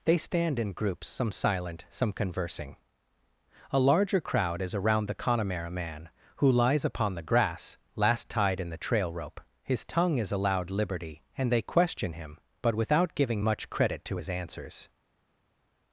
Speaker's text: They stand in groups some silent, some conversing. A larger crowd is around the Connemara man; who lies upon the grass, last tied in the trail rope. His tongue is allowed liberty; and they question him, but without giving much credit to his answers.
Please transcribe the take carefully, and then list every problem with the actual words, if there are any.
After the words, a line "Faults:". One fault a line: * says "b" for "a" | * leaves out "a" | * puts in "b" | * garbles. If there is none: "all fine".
They stand in groups some silent, some conversing. A larger crowd is around the Connemara man; who lies upon the grass, last tied in the trail rope. His tongue is allowed liberty; and they question him, but without giving much credit to his answers.
Faults:
all fine